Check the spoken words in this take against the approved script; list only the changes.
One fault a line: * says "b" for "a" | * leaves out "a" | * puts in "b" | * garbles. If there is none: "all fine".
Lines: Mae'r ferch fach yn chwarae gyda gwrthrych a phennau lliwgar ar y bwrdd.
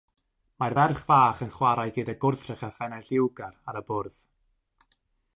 all fine